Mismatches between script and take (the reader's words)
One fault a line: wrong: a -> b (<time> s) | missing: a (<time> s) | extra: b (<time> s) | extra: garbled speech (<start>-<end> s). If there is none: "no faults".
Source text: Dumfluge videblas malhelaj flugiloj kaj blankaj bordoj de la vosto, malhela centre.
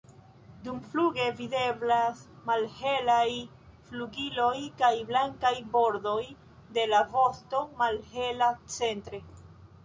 no faults